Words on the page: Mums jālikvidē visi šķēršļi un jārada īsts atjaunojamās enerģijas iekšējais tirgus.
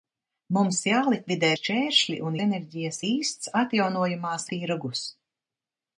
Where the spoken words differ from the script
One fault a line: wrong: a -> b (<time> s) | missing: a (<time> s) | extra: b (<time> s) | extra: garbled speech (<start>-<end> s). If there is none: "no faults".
missing: visi (1.5 s)
wrong: jārada -> enerģijas (2.5 s)
missing: enerģijas iekšējais (4.5 s)